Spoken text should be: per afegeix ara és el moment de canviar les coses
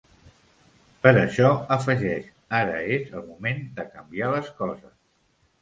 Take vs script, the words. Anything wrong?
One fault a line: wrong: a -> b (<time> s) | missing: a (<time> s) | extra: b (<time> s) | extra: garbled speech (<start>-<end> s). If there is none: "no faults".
extra: això (1.2 s)